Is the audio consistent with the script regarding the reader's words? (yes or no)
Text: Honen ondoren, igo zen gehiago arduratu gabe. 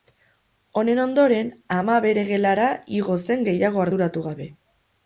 no